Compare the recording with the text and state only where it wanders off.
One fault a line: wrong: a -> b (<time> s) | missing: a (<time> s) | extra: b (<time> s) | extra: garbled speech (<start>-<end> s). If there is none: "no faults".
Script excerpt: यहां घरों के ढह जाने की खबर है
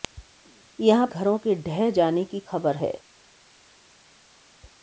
no faults